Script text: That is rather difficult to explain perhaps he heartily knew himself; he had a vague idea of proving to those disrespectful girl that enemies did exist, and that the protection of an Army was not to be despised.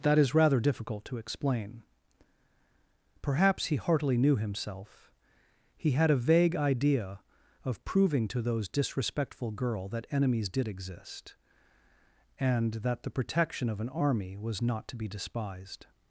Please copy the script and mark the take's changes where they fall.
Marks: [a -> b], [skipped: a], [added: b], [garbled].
That is rather difficult to explain perhaps he heartily knew himself; he had a vague idea of proving to those disrespectful girl that enemies did exist, and that the protection of an Army was not to be despised.